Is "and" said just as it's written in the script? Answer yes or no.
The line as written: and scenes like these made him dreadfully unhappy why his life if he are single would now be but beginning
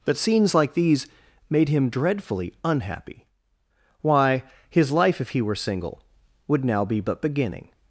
no